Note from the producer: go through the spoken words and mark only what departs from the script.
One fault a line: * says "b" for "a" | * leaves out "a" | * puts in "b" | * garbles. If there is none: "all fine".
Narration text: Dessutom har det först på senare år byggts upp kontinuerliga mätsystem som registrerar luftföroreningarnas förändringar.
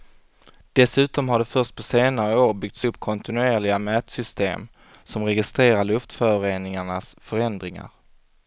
all fine